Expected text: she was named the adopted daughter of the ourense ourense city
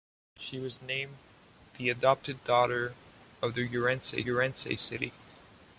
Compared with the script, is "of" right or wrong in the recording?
right